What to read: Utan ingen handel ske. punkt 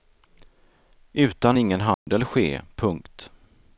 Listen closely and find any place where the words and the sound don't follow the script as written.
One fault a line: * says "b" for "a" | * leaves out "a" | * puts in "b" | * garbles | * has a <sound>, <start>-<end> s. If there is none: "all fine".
* has a dropout, 1.9-2.1 s